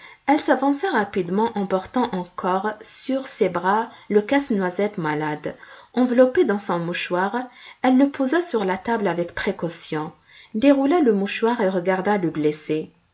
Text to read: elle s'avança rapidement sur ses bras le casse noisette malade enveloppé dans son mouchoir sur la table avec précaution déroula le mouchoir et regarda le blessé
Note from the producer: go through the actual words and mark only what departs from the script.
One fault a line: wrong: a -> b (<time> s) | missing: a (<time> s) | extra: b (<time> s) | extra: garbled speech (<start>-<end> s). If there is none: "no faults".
extra: en portant encore (1.5 s)
extra: elle le posa (7.8 s)